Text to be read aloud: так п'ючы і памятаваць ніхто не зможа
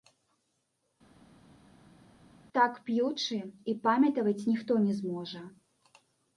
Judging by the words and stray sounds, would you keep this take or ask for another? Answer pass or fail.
pass